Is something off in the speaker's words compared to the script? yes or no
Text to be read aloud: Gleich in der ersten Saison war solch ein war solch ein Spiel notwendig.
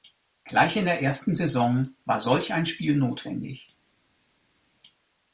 yes